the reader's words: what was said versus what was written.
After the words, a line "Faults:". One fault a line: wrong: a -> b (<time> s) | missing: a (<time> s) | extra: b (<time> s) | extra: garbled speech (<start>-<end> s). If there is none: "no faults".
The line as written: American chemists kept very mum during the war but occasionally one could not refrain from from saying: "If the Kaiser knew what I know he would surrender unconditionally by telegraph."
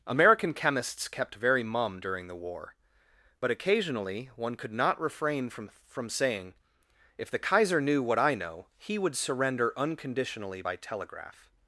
American chemists kept very mum during the war but occasionally one could not refrain from from saying: "If the Kaiser knew what I know he would surrender unconditionally by telegraph."
Faults:
no faults